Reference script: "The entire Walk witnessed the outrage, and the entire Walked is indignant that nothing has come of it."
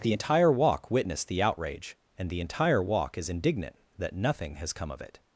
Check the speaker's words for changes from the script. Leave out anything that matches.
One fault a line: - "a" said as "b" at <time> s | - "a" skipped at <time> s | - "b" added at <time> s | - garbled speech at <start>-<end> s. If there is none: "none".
- "Walked" said as "Walk" at 2.8 s